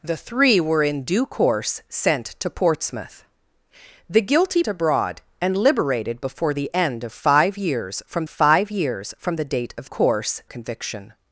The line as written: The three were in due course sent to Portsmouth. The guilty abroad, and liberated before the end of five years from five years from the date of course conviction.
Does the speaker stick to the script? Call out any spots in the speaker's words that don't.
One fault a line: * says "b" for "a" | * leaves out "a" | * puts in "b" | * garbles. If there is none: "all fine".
all fine